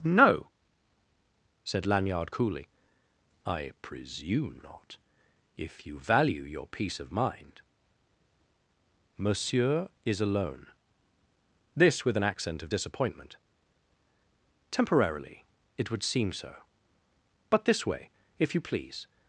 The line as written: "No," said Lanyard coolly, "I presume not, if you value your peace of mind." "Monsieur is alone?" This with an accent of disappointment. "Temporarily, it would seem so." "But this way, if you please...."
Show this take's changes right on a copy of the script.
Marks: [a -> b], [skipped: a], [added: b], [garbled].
"No," said Lanyard coolly, "I presume not, if you value your peace of mind." "Monsieur is alone?" This with an accent of disappointment. "Temporarily, it would seem so." "But this way, if you please...."